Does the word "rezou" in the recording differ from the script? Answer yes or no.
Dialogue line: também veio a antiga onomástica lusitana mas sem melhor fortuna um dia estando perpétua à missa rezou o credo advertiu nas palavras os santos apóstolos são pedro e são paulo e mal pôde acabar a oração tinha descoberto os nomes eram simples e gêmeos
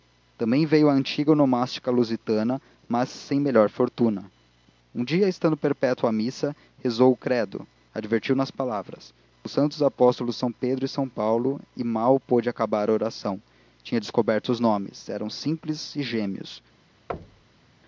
no